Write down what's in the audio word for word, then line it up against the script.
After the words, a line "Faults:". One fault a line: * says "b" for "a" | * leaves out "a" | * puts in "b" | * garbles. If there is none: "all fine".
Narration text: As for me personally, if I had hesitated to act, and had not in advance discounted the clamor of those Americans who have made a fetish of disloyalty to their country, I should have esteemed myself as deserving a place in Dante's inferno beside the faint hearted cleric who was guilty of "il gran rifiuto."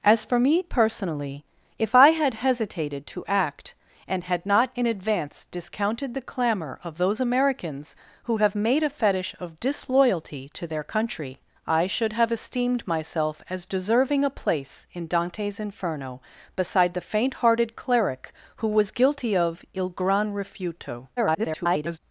As for me personally, if I had hesitated to act, and had not in advance discounted the clamor of those Americans who have made a fetish of disloyalty to their country, I should have esteemed myself as deserving a place in Dante's inferno beside the faint hearted cleric who was guilty of "il gran rifiuto." [garbled]
Faults:
* garbles